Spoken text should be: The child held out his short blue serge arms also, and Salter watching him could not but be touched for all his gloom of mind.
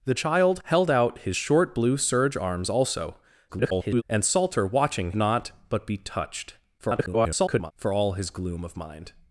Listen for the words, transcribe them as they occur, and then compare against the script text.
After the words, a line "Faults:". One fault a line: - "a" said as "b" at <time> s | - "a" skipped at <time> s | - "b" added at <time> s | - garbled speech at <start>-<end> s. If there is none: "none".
The child held out his short blue serge arms also, [garbled] and Salter watching not but be touched [garbled] for all his gloom of mind.
Faults:
- garbled speech at 3.5-4.0 s
- "him could" skipped at 5.1 s
- garbled speech at 6.8-7.7 s